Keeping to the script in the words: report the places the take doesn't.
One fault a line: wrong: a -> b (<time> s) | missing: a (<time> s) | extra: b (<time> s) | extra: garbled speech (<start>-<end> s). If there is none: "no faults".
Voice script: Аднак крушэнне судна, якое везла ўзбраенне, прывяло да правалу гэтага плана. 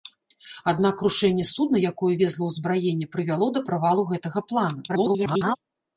extra: garbled speech (4.9-5.6 s)